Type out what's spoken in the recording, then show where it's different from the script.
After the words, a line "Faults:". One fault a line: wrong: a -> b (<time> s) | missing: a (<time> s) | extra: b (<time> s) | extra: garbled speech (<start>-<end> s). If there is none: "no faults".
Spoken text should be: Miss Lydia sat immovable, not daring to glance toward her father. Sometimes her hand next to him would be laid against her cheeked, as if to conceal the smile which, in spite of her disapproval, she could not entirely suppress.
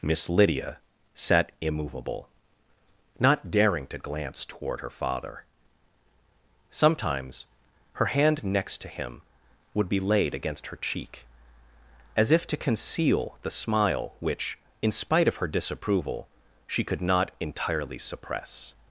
Miss Lydia sat immovable, not daring to glance toward her father. Sometimes her hand next to him would be laid against her cheek, as if to conceal the smile which, in spite of her disapproval, she could not entirely suppress.
Faults:
wrong: cheeked -> cheek (10.8 s)